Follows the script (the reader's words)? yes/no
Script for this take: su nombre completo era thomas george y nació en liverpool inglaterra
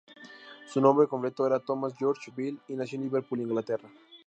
no